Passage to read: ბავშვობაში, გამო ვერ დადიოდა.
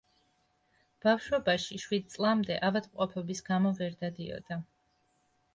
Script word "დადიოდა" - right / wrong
right